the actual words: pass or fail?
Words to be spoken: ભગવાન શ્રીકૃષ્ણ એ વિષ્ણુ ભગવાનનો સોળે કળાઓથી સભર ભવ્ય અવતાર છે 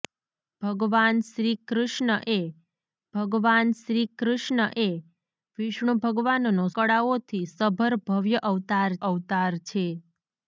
fail